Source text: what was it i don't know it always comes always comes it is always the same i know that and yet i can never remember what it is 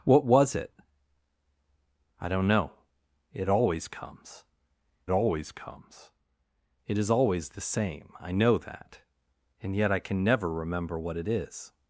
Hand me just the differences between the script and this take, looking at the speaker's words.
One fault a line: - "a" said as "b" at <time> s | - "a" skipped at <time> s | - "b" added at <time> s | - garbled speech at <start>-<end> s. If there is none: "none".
none